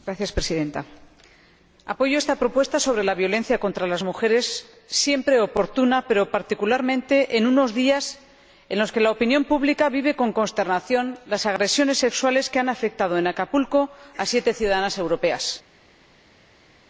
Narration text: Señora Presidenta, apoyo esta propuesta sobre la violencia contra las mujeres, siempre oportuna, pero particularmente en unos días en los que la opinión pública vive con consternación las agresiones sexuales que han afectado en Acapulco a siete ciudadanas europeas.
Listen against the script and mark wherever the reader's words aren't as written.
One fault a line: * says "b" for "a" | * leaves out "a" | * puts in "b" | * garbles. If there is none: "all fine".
all fine